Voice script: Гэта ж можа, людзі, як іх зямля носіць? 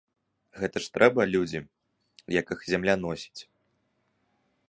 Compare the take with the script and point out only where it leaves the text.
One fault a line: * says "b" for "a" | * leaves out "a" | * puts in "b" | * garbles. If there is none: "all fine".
* says "трэба" for "можа"